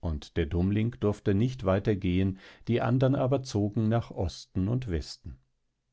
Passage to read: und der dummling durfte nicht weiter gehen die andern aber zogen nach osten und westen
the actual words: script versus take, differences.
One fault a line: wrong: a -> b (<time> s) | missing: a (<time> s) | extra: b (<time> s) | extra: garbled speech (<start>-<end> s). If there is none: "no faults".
no faults